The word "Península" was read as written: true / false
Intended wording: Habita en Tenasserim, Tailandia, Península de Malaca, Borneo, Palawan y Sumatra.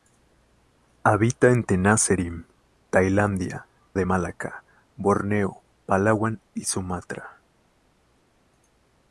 false